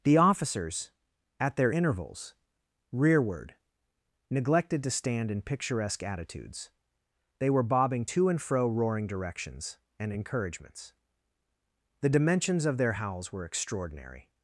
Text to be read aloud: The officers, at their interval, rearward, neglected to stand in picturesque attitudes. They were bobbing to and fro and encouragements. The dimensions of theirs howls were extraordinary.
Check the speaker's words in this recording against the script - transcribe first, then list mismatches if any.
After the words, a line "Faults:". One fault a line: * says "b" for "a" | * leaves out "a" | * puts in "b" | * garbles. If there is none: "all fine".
The officers, at their intervals, rearward, neglected to stand in picturesque attitudes. They were bobbing to and fro roaring directions and encouragements. The dimensions of their howls were extraordinary.
Faults:
* says "intervals" for "interval"
* puts in "roaring directions"
* says "their" for "theirs"